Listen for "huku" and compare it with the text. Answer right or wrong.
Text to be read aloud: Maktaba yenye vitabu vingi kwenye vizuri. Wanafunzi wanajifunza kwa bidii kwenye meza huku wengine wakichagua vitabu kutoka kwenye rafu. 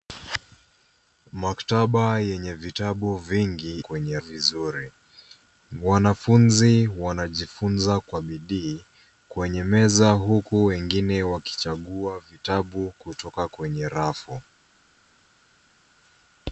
right